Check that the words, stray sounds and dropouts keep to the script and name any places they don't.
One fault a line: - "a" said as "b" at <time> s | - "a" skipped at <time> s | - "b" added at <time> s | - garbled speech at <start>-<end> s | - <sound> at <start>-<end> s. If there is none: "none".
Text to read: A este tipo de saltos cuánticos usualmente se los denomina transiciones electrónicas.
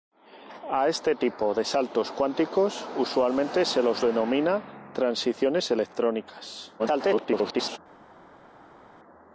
- garbled speech at 6.8-7.8 s